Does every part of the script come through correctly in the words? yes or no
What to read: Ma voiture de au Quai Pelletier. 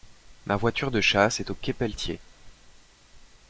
no